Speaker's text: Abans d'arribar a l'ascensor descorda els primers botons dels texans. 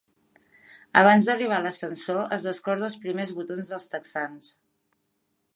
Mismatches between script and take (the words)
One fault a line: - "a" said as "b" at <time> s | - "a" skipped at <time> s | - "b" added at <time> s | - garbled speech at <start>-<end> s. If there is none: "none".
- "es" added at 2.4 s